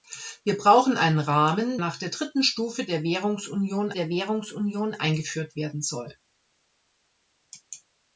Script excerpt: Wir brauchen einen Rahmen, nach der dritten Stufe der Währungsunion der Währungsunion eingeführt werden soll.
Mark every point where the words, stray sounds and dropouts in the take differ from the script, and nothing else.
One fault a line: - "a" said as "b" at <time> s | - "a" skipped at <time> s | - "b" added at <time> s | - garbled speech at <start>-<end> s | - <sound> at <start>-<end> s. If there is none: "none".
none